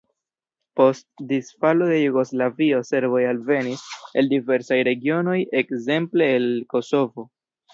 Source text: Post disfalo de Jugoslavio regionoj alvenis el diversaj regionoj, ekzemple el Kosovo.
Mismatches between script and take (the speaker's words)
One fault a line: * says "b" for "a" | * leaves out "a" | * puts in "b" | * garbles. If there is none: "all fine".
* says "serboj" for "regionoj"